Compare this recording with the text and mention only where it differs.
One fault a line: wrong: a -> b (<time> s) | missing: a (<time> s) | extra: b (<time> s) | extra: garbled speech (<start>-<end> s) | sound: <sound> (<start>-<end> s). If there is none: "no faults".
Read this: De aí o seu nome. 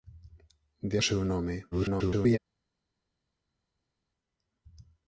missing: aí (1.0 s)
extra: garbled speech (1.7-2.4 s)